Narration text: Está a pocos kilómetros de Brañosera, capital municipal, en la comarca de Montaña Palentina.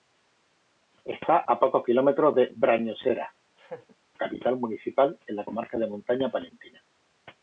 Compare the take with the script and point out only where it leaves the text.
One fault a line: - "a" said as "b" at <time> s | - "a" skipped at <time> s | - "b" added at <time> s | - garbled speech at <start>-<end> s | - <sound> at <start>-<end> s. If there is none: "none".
- laugh at 3.6-4.0 s